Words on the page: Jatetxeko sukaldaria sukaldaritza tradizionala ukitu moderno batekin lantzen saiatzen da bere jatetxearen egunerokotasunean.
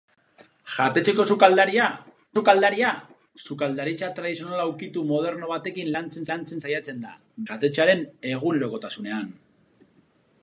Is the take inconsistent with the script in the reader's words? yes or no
yes